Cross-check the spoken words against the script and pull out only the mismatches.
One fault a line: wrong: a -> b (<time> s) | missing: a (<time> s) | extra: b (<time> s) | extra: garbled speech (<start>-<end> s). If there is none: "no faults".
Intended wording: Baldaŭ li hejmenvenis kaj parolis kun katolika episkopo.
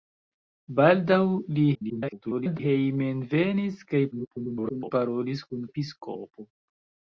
extra: garbled speech (1.7-2.6 s)
extra: garbled speech (4.1-4.9 s)
missing: katolika (5.7 s)